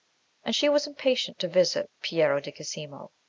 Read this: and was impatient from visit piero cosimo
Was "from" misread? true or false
true